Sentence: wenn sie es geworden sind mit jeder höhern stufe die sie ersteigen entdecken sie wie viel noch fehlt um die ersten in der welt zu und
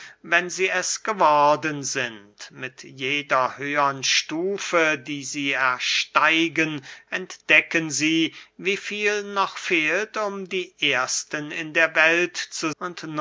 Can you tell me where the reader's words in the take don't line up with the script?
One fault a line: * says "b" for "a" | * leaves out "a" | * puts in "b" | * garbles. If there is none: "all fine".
all fine